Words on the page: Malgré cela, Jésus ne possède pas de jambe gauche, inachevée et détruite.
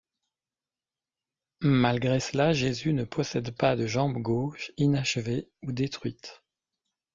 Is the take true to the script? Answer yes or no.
no